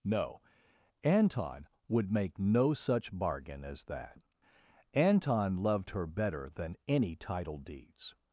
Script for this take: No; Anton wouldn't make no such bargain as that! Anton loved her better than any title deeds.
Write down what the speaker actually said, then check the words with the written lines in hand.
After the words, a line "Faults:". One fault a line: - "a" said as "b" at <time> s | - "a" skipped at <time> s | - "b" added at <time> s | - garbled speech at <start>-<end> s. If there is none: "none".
No; Anton would make no such bargain as that! Anton loved her better than any title deeds.
Faults:
- "wouldn't" said as "would" at 1.9 s